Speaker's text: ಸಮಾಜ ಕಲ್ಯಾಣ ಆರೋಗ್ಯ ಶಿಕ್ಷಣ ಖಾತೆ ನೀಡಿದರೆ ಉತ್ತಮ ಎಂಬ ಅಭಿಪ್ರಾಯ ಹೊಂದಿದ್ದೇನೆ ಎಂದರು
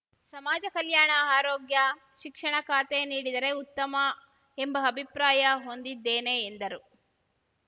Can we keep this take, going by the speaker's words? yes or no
yes